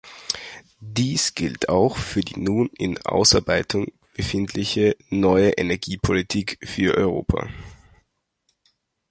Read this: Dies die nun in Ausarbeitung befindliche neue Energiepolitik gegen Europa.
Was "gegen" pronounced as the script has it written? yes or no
no